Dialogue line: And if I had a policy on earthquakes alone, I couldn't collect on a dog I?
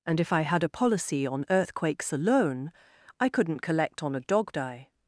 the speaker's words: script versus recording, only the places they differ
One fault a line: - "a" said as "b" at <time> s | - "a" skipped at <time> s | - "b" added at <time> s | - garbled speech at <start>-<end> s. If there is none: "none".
none